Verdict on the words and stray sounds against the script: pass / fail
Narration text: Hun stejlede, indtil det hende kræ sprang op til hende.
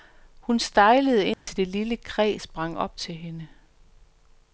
fail